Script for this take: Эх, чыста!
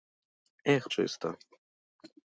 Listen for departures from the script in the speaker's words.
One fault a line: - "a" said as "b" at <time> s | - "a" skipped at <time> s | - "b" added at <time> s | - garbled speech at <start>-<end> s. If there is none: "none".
none